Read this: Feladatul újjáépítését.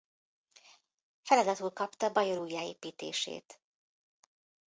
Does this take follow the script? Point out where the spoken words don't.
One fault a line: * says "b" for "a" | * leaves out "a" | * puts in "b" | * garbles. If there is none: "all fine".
* puts in "kapta Bajor"